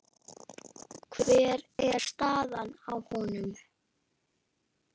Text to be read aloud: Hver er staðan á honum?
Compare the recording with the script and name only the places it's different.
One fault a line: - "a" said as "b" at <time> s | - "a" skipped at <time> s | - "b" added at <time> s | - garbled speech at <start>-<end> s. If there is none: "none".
none